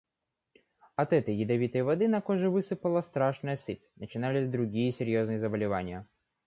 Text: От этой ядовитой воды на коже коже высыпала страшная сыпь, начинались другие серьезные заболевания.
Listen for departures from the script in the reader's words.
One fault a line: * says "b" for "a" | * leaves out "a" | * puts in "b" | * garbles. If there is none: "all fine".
* leaves out "коже"